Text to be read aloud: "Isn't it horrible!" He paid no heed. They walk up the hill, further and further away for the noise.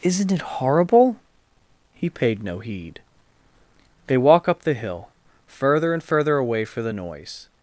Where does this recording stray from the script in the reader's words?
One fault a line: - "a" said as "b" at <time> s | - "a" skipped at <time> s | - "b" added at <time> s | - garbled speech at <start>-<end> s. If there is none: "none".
none